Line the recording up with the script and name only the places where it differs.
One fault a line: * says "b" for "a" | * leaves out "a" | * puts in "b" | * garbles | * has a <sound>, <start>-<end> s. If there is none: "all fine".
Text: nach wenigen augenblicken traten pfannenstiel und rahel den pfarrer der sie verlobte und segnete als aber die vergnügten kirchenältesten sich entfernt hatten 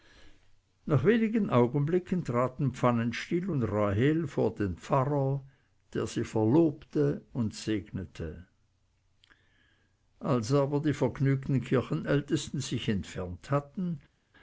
* puts in "vor"